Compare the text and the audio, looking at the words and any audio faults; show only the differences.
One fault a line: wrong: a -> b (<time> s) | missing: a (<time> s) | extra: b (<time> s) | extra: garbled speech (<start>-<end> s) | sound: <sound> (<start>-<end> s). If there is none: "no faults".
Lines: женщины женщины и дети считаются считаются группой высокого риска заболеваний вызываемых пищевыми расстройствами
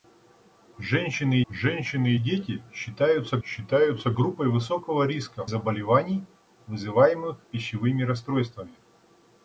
no faults